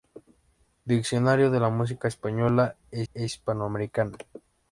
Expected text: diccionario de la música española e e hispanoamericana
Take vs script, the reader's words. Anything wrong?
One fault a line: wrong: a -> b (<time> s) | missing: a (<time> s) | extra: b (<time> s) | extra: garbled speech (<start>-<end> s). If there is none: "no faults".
no faults